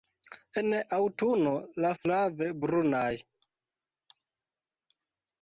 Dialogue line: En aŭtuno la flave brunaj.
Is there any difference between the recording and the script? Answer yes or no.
no